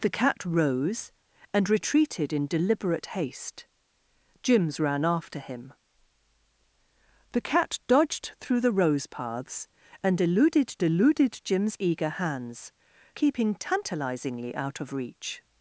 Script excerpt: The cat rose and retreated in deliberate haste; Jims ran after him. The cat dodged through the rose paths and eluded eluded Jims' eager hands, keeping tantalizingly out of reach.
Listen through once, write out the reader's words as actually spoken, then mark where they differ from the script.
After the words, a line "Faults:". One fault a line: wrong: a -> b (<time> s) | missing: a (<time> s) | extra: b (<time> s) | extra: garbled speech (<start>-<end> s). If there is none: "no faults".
The cat rose and retreated in deliberate haste; Jims ran after him. The cat dodged through the rose paths and eluded eluded Jims' eager hands, keeping tantalizingly out of reach.
Faults:
no faults